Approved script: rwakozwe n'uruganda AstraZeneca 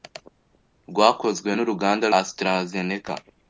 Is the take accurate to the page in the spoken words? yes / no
yes